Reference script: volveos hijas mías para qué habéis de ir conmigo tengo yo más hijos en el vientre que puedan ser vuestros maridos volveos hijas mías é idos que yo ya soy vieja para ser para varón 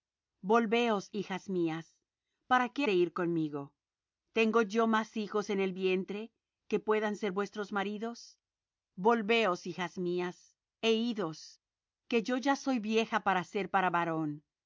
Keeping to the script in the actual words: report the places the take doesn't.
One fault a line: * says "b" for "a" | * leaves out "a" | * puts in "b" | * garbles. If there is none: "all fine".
* leaves out "habéis"